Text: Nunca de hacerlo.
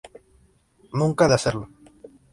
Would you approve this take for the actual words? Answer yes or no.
yes